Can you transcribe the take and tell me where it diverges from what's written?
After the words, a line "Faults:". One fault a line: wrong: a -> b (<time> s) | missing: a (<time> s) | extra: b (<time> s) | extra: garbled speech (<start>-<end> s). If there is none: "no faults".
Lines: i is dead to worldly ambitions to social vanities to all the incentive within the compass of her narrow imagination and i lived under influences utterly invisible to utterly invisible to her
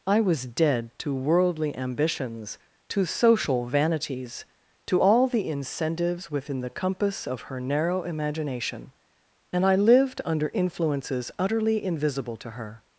i was dead to worldly ambitions to social vanities to all the incentives within the compass of her narrow imagination and i lived under influences utterly invisible to her
Faults:
wrong: is -> was (0.2 s)
wrong: incentive -> incentives (5.5 s)
missing: utterly invisible to (12.5 s)